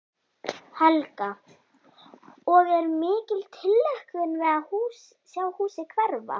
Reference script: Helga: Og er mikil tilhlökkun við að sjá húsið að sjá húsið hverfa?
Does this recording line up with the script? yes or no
no